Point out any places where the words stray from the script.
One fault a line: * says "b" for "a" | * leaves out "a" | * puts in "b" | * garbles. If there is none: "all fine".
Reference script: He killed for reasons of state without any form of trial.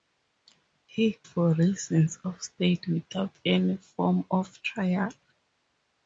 * leaves out "killed"